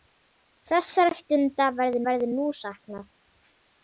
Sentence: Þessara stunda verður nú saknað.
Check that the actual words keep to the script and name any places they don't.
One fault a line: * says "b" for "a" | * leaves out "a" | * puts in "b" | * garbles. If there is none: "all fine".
* puts in "verður"